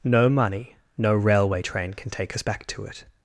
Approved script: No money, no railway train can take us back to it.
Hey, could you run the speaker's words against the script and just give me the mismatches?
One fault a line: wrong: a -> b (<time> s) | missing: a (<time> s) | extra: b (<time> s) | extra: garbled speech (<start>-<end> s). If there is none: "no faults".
no faults